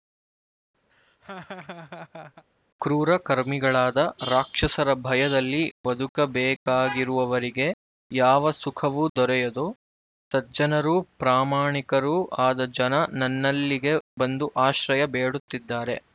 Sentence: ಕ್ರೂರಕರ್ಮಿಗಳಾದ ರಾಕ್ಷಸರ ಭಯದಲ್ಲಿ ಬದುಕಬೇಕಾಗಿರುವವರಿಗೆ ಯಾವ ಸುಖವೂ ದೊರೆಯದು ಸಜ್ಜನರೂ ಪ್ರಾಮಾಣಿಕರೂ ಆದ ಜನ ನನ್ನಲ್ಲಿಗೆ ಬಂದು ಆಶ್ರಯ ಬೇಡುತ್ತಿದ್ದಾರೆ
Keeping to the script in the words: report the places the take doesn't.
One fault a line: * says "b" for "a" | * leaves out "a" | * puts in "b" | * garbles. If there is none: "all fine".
all fine